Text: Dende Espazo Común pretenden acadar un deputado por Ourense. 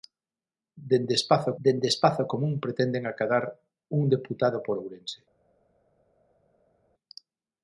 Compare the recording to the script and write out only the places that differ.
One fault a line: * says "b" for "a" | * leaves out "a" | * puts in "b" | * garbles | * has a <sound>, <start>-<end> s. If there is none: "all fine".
* puts in "dende Espazo"